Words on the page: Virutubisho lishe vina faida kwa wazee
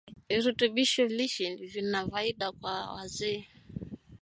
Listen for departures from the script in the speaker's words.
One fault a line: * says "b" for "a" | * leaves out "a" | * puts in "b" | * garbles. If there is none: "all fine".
all fine